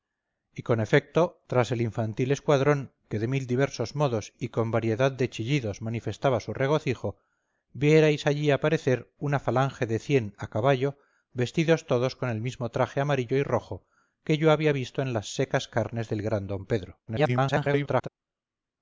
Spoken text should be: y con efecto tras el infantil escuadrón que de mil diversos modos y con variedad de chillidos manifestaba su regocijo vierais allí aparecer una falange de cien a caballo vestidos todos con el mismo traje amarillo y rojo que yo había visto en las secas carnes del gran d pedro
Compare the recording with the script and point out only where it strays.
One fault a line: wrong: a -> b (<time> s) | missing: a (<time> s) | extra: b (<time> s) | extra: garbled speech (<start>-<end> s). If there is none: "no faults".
extra: garbled speech (17.1-18.1 s)